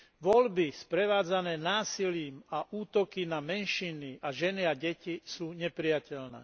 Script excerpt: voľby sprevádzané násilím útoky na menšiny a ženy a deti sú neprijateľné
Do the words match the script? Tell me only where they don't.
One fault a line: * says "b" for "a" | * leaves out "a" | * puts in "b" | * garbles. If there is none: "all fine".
* puts in "a"